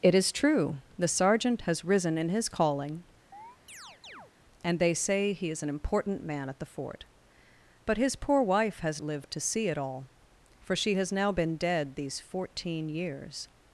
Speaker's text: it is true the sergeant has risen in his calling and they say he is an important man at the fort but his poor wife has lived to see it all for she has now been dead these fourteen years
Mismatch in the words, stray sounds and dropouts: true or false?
true